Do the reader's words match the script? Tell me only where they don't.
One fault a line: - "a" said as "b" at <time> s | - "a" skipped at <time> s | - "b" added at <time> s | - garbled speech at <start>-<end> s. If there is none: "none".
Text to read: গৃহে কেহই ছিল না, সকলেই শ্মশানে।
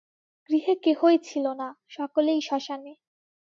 none